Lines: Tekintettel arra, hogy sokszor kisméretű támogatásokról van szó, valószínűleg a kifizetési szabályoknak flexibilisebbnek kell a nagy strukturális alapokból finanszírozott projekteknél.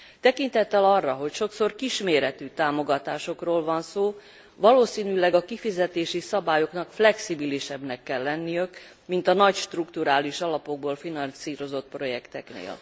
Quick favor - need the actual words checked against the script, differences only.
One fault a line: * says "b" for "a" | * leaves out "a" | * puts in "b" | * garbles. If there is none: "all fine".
* puts in "lenniük mint"